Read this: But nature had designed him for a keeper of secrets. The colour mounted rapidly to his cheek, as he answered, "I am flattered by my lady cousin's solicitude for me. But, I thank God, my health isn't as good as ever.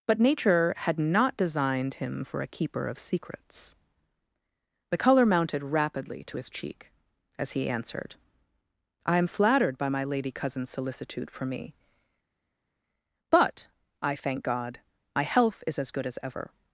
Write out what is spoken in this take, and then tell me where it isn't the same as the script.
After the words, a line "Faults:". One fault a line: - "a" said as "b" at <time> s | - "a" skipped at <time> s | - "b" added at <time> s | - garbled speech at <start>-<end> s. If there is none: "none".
But nature had not designed him for a keeper of secrets. The colour mounted rapidly to his cheek, as he answered, "I am flattered by my lady cousin's solicitude for me. But, I thank God, my health is as good as ever.
Faults:
- "not" added at 1.0 s
- "isn't" said as "is" at 15.7 s